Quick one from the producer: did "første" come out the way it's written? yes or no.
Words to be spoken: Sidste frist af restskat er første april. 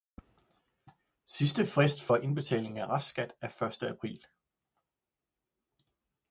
yes